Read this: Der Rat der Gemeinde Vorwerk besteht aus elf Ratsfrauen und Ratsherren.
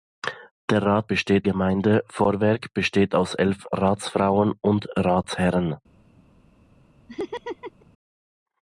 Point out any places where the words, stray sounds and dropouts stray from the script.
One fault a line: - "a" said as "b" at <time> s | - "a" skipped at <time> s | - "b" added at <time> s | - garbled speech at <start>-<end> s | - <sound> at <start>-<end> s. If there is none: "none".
- "der" said as "besteht" at 1.1 s
- laugh at 7.1-7.9 s